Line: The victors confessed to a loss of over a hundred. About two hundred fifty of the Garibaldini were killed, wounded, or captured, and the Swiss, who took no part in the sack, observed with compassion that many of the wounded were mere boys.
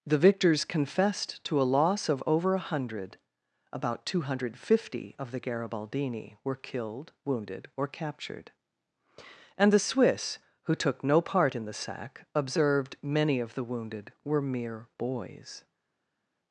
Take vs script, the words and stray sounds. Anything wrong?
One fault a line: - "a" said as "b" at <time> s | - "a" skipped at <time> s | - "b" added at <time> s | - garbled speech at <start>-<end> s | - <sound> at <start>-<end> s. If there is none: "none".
- "with compassion that" skipped at 13.0 s